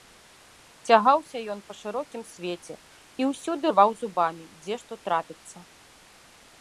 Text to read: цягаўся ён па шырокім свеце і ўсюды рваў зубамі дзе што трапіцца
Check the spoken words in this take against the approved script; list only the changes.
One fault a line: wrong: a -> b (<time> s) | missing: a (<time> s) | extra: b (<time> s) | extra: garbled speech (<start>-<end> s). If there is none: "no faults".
no faults